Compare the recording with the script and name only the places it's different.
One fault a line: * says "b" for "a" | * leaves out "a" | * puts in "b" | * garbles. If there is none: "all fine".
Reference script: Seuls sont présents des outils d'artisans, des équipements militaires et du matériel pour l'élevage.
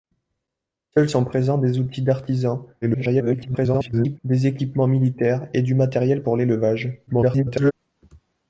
* garbles
* garbles